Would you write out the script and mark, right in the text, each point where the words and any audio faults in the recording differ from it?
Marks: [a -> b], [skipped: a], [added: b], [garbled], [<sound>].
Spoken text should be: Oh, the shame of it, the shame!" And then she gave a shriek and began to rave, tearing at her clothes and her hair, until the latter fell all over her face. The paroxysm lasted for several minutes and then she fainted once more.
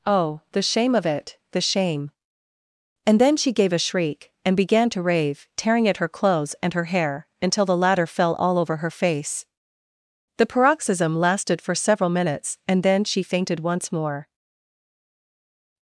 Oh, the shame of it, the shame!" And then she gave a shriek and began to rave, tearing at her clothes and her hair, until the latter fell all over her face. The paroxysm lasted for several minutes and then she fainted once more.